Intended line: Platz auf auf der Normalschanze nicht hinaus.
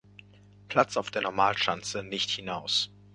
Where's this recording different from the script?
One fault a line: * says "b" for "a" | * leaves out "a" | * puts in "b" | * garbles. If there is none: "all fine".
* leaves out "auf"